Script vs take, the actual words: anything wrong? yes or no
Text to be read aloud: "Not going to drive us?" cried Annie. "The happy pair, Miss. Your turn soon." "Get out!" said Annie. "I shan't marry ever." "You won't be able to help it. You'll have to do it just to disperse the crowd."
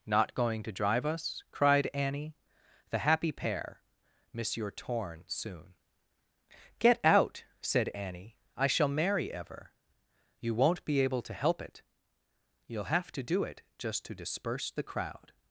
yes